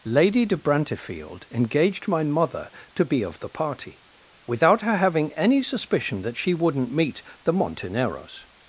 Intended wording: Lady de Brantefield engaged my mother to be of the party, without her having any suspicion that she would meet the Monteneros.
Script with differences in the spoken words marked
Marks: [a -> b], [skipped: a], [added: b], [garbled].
Lady de Brantefield engaged my mother to be of the party, without her having any suspicion that she [would -> wouldn't] meet the Monteneros.